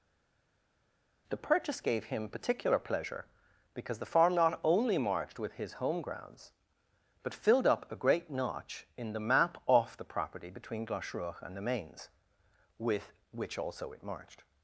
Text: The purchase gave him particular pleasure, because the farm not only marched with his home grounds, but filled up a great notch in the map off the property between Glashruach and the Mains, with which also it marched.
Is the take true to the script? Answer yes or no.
yes